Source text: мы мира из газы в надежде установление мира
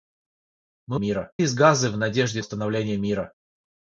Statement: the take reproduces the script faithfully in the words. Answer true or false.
true